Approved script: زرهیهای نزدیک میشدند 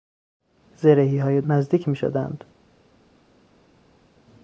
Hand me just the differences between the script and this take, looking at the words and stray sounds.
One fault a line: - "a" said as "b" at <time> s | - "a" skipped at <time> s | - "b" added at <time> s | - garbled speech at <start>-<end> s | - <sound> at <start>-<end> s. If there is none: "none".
none